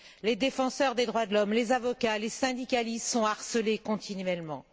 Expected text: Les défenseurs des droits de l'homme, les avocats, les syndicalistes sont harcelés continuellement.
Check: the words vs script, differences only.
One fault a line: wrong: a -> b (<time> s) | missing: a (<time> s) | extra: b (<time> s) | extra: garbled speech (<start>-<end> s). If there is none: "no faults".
no faults